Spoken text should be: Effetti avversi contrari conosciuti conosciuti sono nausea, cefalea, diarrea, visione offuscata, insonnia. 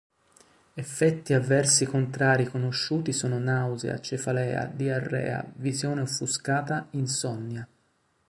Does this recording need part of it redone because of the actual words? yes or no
yes